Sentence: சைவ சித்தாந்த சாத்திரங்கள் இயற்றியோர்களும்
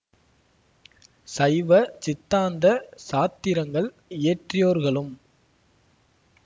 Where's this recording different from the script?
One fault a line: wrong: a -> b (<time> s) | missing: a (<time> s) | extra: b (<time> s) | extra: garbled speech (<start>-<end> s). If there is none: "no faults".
no faults